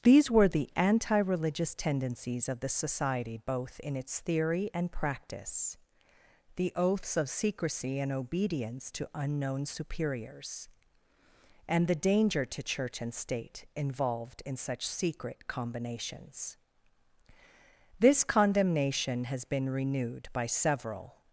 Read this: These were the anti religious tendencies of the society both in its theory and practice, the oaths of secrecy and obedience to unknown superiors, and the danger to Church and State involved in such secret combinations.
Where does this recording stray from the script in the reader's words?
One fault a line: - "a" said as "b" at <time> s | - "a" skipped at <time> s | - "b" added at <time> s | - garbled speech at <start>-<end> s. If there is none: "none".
- "This condemnation has been renewed by several" added at 18.0 s